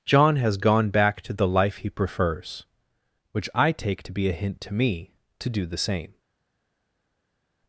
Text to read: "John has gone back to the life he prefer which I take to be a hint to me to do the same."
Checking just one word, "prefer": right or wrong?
wrong